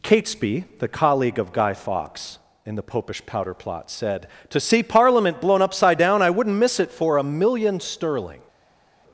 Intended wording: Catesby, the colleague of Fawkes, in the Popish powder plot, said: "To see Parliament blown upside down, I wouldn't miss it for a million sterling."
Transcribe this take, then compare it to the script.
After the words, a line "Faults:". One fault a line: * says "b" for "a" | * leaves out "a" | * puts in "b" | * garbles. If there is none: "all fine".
Catesby, the colleague of Guy Fawkes, in the Popish powder plot, said: "To see Parliament blown upside down, I wouldn't miss it for a million sterling."
Faults:
* puts in "Guy"